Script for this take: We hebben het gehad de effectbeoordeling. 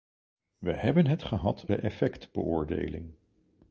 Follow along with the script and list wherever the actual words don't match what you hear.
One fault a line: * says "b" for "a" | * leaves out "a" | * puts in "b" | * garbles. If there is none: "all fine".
all fine